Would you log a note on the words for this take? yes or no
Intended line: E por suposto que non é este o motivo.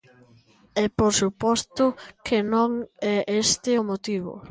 no